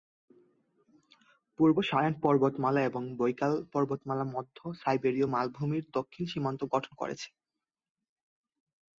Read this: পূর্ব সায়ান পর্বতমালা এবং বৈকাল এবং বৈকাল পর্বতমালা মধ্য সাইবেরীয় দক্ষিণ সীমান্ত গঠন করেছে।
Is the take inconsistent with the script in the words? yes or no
yes